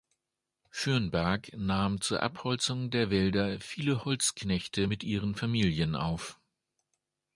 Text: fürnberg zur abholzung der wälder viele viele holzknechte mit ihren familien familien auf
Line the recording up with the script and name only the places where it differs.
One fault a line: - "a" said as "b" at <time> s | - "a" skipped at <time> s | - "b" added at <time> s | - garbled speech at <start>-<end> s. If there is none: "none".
- "nahm" added at 1.6 s
- "viele" skipped at 4.0 s
- "familien" skipped at 5.9 s